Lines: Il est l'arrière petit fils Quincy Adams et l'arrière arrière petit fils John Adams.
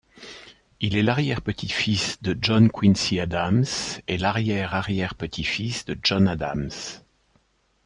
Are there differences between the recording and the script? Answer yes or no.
yes